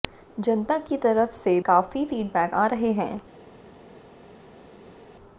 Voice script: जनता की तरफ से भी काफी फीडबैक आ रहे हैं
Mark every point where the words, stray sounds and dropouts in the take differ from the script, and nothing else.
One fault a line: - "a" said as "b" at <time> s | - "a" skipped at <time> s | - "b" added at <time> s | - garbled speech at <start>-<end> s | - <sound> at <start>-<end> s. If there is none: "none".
- "भी" skipped at 1.6 s